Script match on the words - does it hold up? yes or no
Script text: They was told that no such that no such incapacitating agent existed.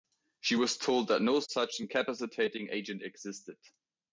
no